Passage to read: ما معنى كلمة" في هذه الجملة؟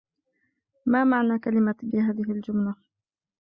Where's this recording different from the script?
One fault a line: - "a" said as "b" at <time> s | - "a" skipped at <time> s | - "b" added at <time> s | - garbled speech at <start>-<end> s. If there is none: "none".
none